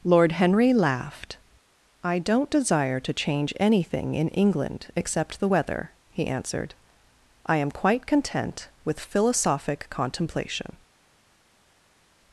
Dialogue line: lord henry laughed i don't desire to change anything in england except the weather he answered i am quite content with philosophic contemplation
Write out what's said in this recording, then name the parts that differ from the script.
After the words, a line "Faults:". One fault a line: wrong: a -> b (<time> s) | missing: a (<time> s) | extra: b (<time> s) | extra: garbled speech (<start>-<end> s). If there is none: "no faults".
lord henry laughed i don't desire to change anything in england except the weather he answered i am quite content with philosophic contemplation
Faults:
no faults